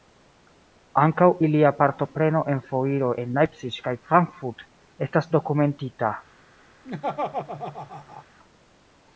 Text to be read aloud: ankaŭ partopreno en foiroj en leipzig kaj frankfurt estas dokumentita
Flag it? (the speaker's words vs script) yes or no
yes